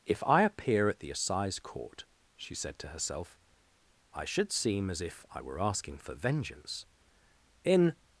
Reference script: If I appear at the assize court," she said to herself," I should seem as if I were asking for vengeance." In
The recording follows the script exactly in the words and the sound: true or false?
true